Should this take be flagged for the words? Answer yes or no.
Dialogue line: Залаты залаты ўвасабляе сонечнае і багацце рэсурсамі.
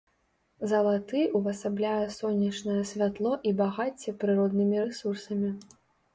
yes